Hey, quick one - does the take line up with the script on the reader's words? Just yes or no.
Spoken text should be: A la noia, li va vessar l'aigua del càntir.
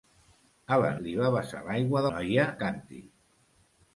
no